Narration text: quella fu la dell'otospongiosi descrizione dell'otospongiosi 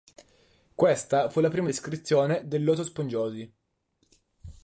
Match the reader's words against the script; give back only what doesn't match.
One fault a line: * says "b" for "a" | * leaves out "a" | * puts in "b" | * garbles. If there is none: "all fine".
* says "questa" for "quella"
* says "prima" for "dell'otospongiosi"